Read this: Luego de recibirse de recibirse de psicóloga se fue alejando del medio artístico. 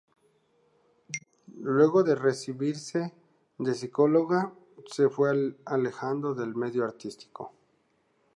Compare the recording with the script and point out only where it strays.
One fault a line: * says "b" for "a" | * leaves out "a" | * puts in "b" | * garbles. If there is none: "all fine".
* leaves out "recibirse de"